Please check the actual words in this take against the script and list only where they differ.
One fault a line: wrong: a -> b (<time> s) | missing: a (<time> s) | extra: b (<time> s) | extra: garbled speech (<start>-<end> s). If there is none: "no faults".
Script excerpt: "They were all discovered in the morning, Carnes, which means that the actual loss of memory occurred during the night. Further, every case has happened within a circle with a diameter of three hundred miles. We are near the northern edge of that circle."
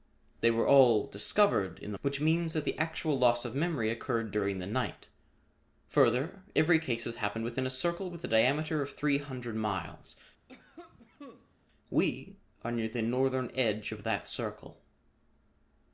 missing: morning Carnes (2.0 s)